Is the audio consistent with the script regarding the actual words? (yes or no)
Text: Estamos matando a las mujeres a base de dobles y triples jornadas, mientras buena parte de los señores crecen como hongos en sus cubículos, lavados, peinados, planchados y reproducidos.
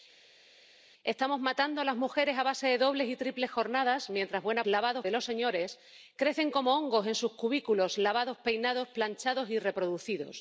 no